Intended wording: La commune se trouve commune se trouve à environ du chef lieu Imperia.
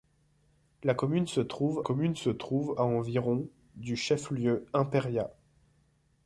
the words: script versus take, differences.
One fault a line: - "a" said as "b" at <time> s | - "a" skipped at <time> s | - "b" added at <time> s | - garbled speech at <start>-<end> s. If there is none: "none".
none